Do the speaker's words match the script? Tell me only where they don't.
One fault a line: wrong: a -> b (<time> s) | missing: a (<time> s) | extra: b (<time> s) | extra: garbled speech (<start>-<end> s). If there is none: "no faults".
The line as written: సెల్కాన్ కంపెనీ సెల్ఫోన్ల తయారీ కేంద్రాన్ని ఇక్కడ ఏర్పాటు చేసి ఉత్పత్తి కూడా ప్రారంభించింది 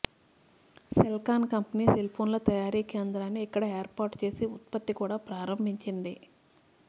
no faults